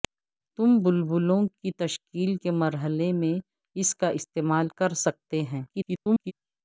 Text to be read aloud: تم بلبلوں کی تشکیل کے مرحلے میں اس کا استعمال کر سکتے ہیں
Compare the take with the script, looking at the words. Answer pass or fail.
fail